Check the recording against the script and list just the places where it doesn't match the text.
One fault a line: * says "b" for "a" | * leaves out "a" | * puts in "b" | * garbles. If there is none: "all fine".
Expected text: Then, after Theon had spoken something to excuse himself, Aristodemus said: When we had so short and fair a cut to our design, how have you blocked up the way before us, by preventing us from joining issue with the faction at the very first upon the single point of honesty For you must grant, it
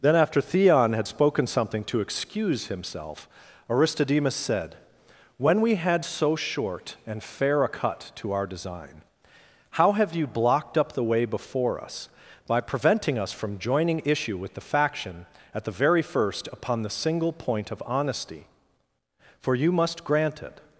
all fine